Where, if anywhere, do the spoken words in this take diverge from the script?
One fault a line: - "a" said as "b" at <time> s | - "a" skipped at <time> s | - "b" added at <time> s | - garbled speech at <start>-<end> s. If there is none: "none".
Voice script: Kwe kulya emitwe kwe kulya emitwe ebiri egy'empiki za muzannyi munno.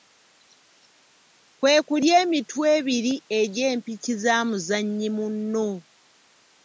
- "kwe kulya emitwe" skipped at 2.6 s